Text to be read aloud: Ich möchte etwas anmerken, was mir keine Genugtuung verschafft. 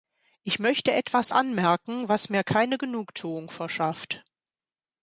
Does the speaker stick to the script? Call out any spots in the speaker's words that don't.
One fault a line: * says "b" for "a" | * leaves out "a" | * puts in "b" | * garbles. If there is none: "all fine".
all fine